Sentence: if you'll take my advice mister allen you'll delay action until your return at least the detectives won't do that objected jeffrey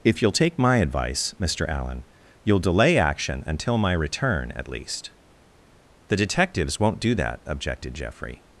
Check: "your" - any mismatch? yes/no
yes